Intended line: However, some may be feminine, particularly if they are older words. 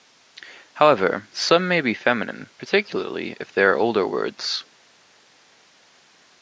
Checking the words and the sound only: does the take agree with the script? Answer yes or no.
yes